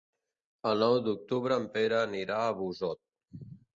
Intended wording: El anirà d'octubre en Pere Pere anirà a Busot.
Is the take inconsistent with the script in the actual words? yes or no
yes